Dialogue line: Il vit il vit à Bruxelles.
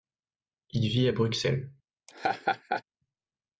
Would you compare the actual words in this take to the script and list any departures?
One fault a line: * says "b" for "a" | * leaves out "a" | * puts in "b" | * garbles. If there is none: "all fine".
* leaves out "il vit"